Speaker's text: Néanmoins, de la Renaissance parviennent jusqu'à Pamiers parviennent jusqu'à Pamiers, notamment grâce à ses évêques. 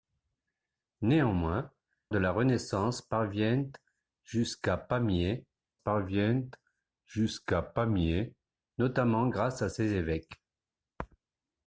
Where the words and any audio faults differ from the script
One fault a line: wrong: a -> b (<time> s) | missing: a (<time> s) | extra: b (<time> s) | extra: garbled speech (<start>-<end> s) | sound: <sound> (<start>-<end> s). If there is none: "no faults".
no faults